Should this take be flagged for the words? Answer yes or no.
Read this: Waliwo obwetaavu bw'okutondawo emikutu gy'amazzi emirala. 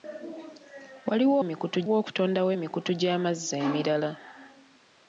yes